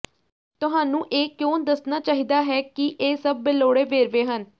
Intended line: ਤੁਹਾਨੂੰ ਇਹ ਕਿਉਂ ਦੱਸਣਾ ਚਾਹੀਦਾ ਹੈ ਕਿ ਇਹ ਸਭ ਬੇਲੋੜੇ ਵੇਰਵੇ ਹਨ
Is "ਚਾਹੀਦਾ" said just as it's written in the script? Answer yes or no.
yes